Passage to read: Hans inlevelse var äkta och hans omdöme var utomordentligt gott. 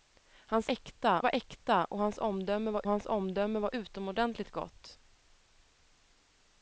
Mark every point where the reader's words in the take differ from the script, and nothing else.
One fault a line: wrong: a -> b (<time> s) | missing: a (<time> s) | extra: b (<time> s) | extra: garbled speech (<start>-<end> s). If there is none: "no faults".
wrong: inlevelse -> äkta (0.7 s)
extra: hans omdöme var (2.9 s)